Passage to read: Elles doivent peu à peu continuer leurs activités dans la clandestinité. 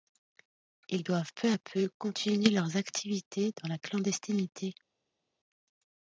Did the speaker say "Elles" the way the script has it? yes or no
no